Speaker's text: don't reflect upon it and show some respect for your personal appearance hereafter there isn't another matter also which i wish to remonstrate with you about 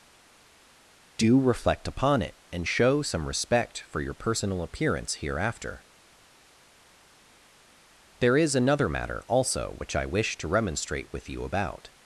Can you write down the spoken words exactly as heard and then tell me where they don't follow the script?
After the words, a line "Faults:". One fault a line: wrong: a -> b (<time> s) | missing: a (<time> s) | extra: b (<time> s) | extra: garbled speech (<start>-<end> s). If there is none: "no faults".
do reflect upon it and show some respect for your personal appearance hereafter there is another matter also which i wish to remonstrate with you about
Faults:
wrong: don't -> do (1.2 s)
wrong: isn't -> is (8.4 s)